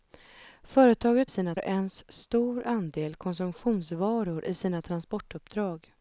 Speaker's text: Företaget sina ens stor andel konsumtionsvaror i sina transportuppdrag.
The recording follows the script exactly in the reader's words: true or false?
true